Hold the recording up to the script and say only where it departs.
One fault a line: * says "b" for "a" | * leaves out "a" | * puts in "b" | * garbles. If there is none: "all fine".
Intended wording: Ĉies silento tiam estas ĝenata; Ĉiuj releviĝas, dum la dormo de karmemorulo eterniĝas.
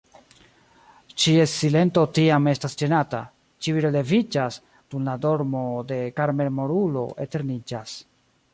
all fine